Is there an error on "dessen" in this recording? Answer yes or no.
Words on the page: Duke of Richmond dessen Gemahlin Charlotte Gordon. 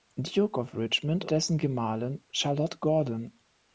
no